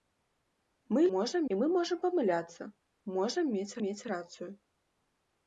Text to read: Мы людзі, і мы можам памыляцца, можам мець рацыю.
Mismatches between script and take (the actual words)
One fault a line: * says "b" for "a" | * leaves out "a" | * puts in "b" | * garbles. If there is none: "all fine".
* says "можам" for "людзі"
* puts in "мець"